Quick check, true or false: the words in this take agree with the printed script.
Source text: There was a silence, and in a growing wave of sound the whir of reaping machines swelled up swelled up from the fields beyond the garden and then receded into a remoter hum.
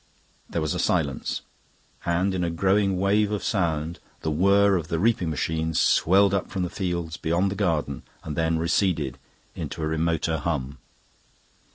false